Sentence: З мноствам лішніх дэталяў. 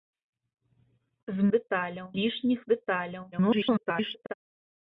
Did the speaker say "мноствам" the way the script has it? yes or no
no